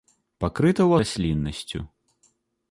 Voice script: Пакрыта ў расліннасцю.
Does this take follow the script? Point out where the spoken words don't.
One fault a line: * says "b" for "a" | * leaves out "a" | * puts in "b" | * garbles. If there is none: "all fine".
all fine